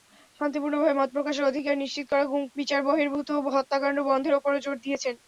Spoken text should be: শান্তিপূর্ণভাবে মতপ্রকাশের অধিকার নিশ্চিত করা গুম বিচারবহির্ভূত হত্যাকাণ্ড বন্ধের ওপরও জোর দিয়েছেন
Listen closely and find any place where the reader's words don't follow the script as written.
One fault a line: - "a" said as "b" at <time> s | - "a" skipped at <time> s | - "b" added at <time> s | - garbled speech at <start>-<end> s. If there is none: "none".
none